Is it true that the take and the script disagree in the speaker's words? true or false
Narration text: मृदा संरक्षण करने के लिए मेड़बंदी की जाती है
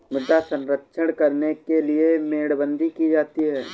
false